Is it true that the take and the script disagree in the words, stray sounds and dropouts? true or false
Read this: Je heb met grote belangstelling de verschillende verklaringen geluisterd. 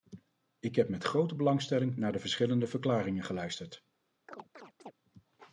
true